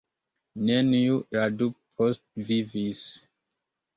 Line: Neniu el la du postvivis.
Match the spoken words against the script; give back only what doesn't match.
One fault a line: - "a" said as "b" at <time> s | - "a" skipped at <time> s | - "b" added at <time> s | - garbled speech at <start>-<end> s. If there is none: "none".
- "el" skipped at 1.2 s